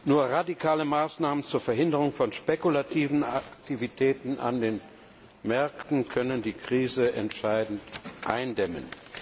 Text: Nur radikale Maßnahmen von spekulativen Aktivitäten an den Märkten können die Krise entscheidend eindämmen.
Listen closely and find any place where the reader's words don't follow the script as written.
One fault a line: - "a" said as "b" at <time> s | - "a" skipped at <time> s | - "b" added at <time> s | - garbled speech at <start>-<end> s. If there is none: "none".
- "zur Verhinderung" added at 1.4 s